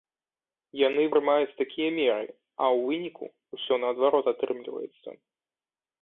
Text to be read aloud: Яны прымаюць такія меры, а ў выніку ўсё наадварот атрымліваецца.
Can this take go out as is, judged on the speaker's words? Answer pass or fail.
pass